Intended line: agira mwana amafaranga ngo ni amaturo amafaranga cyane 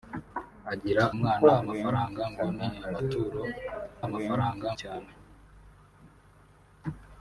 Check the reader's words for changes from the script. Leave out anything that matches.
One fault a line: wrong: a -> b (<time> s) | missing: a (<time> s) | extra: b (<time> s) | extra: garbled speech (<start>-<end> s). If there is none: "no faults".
no faults